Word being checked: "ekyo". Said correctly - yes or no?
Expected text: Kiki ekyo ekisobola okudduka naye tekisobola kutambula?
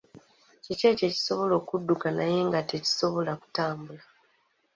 yes